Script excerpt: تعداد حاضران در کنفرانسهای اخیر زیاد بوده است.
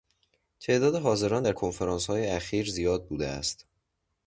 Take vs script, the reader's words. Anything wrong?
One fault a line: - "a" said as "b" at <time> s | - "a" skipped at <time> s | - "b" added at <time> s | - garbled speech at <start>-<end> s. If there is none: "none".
none